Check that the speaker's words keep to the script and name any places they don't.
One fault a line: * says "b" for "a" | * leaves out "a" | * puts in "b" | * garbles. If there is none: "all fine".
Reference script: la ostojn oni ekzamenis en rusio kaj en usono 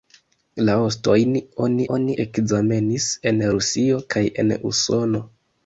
* puts in "oni"